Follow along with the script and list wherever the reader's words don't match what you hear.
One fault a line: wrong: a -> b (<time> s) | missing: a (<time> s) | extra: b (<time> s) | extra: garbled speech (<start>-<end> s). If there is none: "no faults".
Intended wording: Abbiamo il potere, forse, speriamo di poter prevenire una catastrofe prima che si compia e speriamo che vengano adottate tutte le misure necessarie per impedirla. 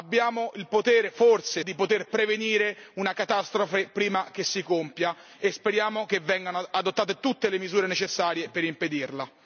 missing: speriamo (1.6 s)